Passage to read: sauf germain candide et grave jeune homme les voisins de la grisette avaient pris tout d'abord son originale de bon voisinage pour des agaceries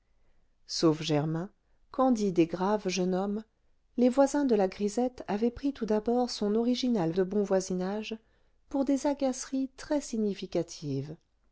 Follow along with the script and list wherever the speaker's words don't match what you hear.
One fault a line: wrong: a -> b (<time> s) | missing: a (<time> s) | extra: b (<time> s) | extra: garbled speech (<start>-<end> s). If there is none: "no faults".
no faults